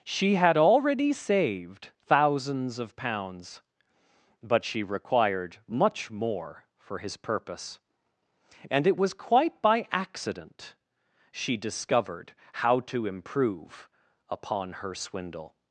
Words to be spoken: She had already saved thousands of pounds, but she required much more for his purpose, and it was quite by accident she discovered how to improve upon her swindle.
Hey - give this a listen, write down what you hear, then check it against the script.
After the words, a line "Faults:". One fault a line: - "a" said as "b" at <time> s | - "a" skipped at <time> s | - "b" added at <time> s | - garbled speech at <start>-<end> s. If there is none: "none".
She had already saved thousands of pounds, but she required much more for his purpose, and it was quite by accident she discovered how to improve upon her swindle.
Faults:
none